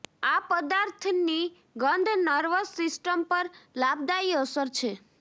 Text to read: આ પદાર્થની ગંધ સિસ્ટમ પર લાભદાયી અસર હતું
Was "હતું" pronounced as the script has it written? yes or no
no